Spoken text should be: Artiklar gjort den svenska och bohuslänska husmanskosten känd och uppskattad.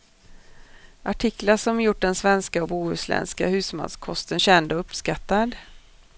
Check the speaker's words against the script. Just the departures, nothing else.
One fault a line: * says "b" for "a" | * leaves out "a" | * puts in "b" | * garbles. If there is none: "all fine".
* puts in "som"